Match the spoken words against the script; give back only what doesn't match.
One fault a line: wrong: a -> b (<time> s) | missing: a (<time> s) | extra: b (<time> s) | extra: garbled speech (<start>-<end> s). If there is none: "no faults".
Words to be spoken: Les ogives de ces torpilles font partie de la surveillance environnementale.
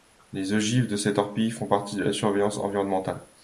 no faults